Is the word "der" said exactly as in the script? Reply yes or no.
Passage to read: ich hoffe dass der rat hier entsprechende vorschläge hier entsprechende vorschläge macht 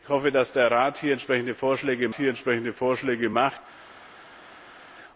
yes